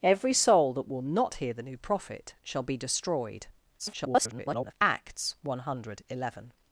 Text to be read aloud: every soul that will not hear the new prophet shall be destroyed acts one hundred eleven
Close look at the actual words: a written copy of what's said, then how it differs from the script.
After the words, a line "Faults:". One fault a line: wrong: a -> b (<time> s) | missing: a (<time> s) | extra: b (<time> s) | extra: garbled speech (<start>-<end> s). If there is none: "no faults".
every soul that will not hear the new prophet shall be destroyed [garbled] acts one hundred eleven
Faults:
extra: garbled speech (3.8-4.7 s)